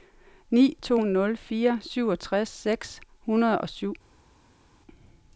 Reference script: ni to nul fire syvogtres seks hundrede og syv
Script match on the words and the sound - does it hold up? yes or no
yes